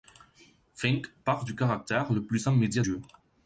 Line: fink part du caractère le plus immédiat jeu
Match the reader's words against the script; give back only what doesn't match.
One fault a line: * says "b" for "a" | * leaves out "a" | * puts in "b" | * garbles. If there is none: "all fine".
all fine